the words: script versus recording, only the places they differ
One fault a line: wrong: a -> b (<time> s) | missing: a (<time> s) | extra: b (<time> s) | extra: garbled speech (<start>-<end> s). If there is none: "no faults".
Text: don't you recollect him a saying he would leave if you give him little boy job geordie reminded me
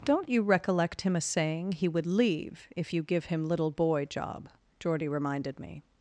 no faults